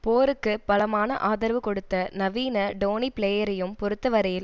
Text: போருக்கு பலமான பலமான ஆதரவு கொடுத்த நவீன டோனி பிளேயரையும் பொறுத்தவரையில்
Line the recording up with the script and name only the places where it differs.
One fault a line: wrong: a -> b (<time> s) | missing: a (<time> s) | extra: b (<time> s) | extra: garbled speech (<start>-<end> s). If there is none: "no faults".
missing: பலமான (1.2 s)